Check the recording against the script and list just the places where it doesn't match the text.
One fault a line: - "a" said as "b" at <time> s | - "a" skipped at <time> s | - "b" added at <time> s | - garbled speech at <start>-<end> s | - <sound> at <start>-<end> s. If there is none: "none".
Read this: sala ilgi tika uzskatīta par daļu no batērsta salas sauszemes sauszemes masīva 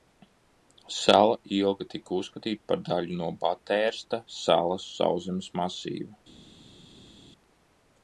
- "sauszemes" skipped at 5.5 s